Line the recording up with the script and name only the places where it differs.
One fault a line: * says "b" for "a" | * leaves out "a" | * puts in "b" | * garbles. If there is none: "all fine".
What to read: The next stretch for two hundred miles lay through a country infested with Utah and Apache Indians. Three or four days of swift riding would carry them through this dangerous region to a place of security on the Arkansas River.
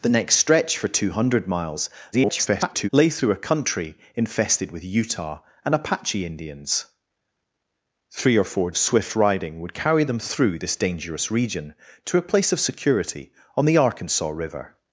* garbles
* leaves out "days"